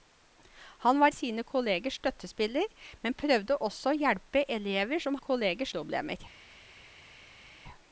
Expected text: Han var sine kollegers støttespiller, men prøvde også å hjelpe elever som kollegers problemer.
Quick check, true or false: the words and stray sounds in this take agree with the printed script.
true